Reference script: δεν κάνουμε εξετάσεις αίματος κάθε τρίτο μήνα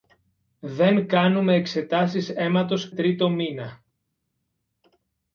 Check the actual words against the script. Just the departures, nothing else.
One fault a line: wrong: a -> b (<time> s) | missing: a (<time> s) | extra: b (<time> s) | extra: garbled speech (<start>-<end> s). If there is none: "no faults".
missing: κάθε (2.9 s)